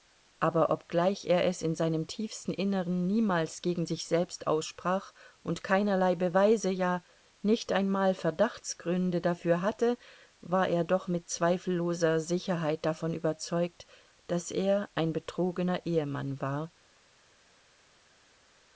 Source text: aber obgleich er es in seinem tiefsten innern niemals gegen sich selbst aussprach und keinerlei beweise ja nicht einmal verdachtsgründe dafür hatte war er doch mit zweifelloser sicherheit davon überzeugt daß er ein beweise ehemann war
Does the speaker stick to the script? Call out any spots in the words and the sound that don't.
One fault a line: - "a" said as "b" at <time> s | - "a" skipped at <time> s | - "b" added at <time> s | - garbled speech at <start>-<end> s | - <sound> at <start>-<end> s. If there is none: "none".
- "beweise" said as "betrogener" at 15.1 s